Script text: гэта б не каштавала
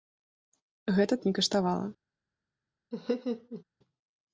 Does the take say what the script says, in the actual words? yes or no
yes